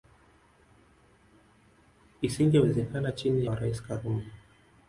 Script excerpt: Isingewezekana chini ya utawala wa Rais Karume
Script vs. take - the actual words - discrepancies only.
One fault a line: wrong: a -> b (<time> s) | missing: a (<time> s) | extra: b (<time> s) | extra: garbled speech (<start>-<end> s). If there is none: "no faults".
missing: ya utawala (3.5 s)